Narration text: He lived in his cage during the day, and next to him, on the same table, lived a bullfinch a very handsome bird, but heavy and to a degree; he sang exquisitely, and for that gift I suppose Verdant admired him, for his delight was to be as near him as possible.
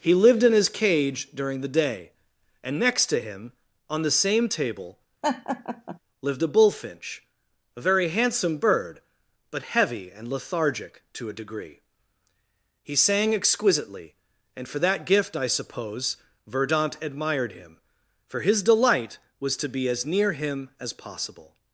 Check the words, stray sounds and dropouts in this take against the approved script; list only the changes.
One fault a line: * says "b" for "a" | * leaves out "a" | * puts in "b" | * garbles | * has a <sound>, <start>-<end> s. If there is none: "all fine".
* has a laugh, 5.2-6.0 s
* puts in "lethargic"